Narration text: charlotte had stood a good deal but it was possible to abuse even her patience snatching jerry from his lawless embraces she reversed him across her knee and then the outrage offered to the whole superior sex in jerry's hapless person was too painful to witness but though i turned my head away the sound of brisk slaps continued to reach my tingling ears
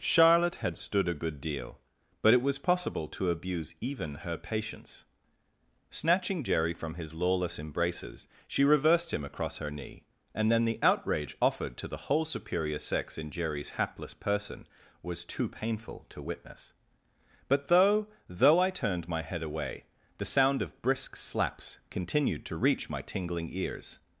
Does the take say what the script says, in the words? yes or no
no